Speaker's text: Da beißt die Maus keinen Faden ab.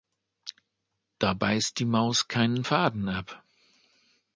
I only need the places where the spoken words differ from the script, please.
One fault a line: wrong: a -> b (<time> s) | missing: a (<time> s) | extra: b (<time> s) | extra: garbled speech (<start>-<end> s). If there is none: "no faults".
no faults